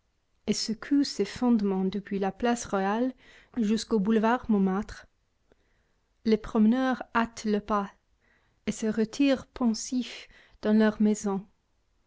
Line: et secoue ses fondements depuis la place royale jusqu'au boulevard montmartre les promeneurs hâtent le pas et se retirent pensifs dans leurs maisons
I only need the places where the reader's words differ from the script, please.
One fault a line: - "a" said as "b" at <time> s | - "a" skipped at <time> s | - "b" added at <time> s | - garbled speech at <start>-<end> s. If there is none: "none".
none